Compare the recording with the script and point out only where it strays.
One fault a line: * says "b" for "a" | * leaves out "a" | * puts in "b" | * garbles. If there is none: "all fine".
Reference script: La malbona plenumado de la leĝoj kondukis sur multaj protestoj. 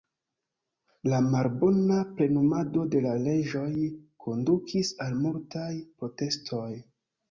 * says "al" for "sur"